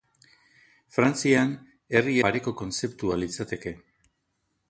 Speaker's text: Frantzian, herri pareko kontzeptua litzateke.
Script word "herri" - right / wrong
right